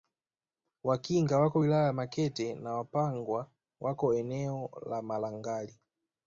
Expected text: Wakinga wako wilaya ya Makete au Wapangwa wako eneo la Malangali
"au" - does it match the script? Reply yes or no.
no